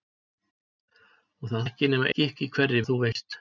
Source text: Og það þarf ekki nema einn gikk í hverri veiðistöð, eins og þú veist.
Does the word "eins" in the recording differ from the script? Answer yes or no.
yes